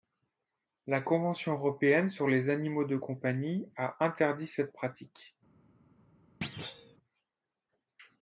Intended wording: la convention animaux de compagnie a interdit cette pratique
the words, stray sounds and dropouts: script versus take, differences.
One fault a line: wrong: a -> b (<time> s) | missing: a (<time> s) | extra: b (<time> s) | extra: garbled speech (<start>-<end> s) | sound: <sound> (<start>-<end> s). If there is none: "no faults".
extra: européenne sur les (1.5 s)
sound: thud (6.4-7.0 s)